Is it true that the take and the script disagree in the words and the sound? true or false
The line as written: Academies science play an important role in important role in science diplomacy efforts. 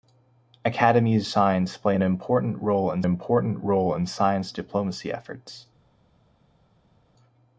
false